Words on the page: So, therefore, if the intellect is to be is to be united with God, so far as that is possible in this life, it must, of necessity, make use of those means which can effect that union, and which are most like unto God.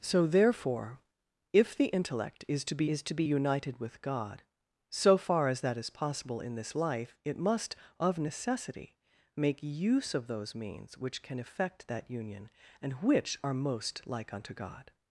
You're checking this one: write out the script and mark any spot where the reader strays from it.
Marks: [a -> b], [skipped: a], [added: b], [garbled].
So, therefore, if the intellect is to be is to be united with God, so far as that is possible in this life, it must, of necessity, make use of those means which can effect that union, and which are most like unto God.